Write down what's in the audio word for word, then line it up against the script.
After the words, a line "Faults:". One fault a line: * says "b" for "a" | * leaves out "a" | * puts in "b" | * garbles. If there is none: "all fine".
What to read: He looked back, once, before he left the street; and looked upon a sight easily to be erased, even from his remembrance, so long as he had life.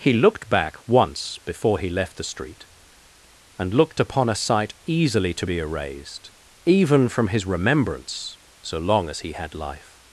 He looked back, once, before he left the street; and looked upon a sight easily to be erased, even from his remembrance, so long as he had life.
Faults:
all fine